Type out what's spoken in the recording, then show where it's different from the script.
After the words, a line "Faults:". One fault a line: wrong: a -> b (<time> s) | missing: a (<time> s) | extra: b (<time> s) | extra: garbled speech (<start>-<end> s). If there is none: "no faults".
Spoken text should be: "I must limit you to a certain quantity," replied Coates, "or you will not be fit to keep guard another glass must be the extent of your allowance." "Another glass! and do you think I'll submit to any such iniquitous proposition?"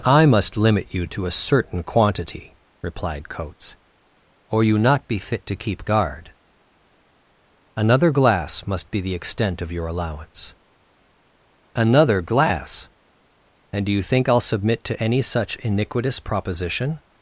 "I must limit you to a certain quantity," replied Coates, "or you not be fit to keep guard another glass must be the extent of your allowance." "Another glass! and do you think I'll submit to any such iniquitous proposition?"
Faults:
missing: will (4.8 s)